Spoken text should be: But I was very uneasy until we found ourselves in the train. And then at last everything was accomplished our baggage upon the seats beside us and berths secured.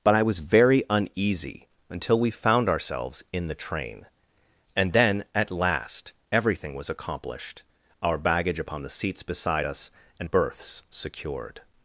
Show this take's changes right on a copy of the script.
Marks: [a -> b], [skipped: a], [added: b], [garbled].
But I was very uneasy until we found ourselves in the train. And then at last everything was accomplished our baggage upon the seats beside us and berths secured.